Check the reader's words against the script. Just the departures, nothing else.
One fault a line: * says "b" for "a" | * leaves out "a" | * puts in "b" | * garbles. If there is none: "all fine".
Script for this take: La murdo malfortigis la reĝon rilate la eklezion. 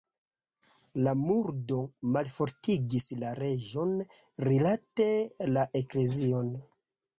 all fine